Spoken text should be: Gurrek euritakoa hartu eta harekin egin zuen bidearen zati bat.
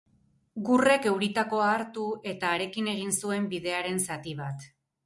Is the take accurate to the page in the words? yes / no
yes